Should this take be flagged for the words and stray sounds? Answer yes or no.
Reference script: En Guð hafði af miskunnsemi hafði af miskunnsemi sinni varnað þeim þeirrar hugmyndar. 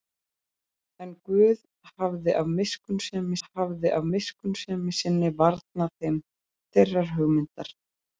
no